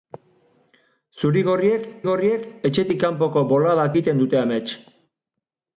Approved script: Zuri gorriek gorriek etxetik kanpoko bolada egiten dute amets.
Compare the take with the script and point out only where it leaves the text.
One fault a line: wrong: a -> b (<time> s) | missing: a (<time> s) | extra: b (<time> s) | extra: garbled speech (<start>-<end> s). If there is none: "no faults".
no faults